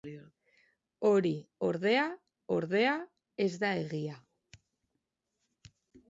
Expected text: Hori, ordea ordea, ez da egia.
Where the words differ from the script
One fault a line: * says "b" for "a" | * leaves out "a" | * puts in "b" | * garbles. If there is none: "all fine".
all fine